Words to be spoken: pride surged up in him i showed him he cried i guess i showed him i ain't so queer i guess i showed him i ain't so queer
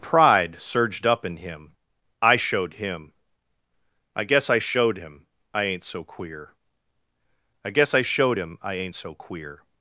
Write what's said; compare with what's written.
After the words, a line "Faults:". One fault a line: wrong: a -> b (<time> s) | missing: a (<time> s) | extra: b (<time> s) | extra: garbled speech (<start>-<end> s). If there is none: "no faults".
pride surged up in him i showed him i guess i showed him i ain't so queer i guess i showed him i ain't so queer
Faults:
missing: he cried (3.1 s)